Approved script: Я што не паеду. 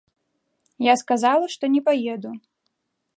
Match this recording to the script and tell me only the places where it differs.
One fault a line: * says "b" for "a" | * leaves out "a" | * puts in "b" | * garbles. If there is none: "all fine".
* puts in "сказала"